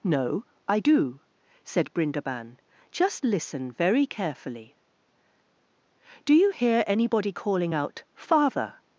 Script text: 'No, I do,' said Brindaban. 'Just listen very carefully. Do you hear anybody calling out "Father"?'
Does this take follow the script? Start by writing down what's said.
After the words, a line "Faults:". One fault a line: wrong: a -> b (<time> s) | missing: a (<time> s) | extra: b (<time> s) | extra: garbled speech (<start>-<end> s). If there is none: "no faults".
'No, I do,' said Brindaban. 'Just listen very carefully. Do you hear anybody calling out "Father"?'
Faults:
no faults